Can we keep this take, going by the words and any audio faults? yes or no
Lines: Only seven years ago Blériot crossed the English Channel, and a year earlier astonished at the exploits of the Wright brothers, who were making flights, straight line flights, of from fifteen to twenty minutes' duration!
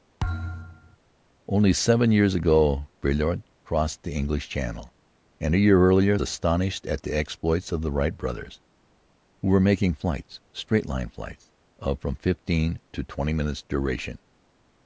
no